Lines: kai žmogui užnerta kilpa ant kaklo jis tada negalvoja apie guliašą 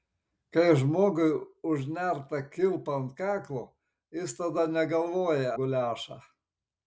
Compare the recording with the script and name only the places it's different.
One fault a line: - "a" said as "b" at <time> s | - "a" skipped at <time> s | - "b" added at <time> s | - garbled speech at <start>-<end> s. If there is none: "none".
- "apie" skipped at 5.5 s